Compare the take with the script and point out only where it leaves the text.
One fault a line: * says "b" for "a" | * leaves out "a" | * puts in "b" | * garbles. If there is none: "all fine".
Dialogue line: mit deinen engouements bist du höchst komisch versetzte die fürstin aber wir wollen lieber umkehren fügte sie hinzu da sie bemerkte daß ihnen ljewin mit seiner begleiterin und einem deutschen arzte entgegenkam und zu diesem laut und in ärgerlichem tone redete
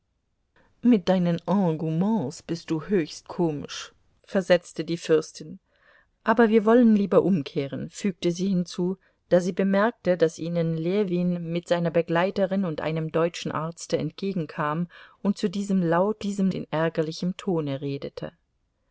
* says "diesem" for "und"